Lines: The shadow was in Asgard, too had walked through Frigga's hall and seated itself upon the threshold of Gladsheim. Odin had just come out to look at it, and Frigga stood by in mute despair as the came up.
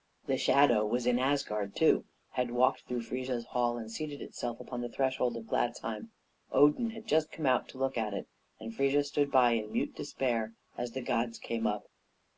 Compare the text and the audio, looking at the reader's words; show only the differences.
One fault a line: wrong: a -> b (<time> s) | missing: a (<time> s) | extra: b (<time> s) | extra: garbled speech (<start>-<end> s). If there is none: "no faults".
extra: gods (11.0 s)